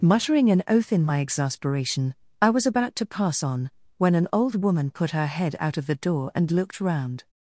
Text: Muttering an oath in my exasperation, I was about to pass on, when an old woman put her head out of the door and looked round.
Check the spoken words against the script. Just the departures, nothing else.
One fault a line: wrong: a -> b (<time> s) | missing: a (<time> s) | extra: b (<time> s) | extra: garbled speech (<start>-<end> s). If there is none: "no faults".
no faults